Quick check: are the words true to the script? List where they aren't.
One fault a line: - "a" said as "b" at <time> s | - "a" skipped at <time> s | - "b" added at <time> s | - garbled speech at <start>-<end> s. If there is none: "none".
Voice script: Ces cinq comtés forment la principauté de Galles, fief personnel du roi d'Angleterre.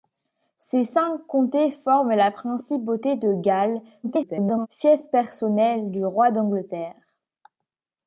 - garbled speech at 4.0-4.7 s